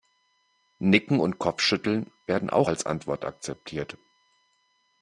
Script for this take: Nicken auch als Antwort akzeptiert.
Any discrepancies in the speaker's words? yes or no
yes